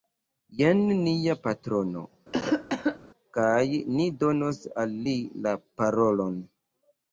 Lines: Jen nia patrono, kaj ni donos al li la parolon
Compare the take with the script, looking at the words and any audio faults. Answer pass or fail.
fail